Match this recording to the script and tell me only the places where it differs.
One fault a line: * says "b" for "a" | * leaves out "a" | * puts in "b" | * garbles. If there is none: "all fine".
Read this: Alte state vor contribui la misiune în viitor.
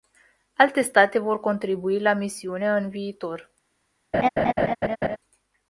all fine